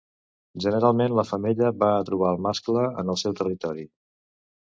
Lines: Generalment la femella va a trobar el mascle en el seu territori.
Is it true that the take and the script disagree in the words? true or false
false